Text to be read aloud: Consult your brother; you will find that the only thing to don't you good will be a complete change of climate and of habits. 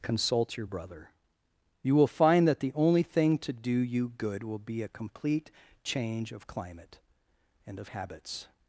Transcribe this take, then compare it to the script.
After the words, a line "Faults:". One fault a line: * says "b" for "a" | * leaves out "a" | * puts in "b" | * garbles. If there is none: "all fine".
Consult your brother; you will find that the only thing to do you good will be a complete change of climate and of habits.
Faults:
* says "do" for "don't"